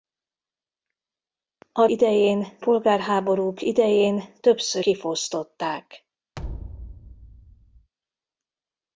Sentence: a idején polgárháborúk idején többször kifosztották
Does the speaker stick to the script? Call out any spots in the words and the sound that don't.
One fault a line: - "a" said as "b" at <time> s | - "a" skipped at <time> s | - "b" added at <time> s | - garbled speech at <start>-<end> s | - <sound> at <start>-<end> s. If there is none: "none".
- thud at 6.4-7.9 s